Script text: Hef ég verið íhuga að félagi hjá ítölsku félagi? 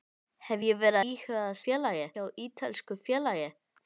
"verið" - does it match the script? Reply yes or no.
yes